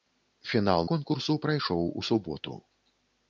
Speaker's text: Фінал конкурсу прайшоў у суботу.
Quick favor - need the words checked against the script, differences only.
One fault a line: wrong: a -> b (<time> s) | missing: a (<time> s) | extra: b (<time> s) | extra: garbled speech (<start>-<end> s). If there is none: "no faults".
no faults